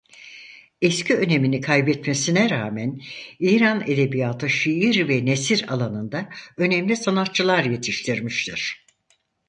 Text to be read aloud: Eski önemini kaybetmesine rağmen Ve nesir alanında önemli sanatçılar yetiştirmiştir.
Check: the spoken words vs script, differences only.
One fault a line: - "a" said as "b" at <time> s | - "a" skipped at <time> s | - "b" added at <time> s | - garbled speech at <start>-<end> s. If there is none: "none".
- "İran edebiyatı şiir" added at 3.4 s